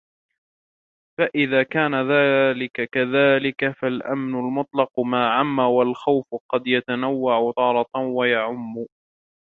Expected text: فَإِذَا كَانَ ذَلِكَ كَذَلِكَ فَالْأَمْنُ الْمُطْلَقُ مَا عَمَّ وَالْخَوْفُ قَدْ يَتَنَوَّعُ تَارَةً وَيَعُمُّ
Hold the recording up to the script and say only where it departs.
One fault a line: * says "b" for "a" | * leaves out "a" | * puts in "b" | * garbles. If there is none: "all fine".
all fine